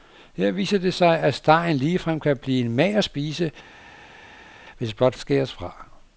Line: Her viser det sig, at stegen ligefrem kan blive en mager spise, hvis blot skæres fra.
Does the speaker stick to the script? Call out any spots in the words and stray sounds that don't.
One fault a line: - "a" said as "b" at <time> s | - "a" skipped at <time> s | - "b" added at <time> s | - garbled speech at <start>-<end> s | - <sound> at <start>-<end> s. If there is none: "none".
none